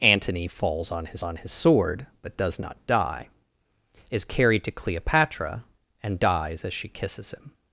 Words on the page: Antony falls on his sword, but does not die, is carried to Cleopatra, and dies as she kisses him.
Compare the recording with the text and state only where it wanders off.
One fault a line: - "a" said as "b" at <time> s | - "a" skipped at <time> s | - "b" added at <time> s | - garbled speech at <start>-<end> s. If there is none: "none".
- "on his" added at 1.2 s